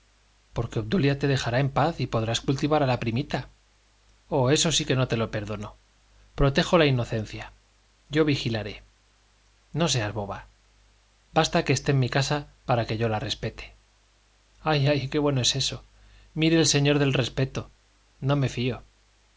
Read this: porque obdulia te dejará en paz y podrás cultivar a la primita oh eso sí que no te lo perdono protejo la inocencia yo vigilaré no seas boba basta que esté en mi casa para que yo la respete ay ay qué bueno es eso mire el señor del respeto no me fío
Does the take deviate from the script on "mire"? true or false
false